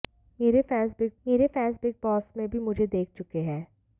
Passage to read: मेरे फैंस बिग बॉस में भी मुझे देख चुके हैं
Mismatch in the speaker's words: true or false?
true